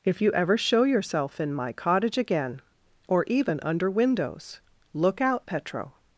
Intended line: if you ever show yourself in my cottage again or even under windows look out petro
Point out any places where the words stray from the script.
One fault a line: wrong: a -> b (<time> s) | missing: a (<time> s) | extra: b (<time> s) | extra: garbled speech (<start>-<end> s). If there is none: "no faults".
no faults